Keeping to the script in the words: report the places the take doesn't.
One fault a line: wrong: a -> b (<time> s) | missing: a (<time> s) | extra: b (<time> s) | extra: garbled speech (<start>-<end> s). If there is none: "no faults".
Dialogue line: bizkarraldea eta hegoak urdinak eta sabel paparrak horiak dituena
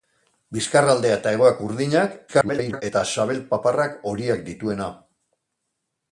extra: garbled speech (2.3-2.8 s)